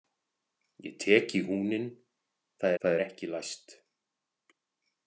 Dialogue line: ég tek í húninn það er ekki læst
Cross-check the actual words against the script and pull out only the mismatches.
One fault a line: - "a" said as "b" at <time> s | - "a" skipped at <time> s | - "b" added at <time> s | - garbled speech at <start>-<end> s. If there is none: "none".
- "það" added at 2.8 s